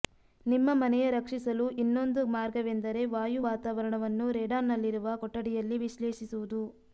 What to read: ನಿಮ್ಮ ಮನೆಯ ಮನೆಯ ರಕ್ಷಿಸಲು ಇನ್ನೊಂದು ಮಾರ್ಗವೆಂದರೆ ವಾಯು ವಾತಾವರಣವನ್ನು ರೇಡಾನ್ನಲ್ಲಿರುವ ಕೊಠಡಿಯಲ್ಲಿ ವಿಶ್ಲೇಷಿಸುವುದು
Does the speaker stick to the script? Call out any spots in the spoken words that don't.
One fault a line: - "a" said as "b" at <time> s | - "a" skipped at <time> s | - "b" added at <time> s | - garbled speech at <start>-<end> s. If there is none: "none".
- "ಮನೆಯ" skipped at 1.1 s